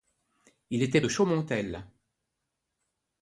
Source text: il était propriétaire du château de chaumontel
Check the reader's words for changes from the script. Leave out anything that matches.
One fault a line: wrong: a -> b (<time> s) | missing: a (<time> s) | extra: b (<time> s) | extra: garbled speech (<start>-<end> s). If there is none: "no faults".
missing: propriétaire du château (1.0 s)